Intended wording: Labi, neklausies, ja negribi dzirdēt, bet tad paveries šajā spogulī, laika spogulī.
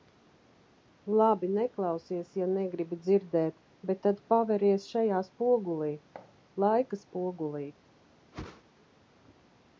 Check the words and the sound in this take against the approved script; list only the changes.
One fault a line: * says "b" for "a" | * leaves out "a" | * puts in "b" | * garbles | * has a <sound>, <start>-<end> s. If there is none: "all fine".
* has a thud, 6.1-6.3 s
* has a whoosh, 8.3-8.6 s